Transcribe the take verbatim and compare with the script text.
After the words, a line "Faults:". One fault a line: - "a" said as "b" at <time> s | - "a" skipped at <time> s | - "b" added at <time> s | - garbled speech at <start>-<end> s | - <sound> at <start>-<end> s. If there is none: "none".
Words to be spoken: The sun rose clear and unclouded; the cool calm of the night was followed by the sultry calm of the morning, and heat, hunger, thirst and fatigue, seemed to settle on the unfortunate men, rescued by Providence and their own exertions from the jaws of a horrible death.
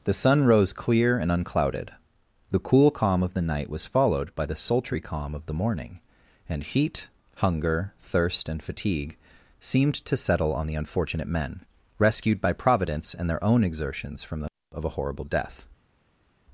The sun rose clear and unclouded; the cool calm of the night was followed by the sultry calm of the morning, and heat, hunger, thirst and fatigue, seemed to settle on the unfortunate men, rescued by Providence and their own exertions from the of a horrible death.
Faults:
- "jaws" skipped at 14.5 s